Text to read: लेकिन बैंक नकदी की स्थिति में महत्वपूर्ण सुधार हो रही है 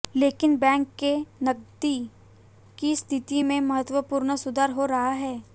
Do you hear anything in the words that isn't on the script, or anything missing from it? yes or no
yes